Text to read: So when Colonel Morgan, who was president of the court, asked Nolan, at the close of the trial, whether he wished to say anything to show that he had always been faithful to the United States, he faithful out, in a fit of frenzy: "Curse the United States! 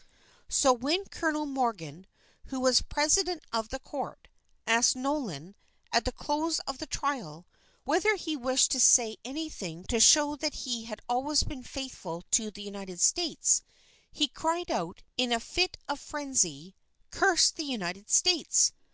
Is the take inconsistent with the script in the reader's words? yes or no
yes